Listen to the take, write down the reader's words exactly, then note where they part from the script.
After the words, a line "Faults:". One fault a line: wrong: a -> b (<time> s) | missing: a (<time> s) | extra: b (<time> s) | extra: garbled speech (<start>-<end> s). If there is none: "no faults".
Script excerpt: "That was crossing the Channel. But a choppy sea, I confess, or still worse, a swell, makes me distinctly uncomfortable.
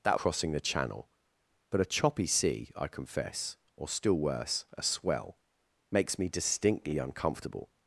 "That crossing the Channel. But a choppy sea, I confess, or still worse, a swell, makes me distinctly uncomfortable.
Faults:
missing: was (0.2 s)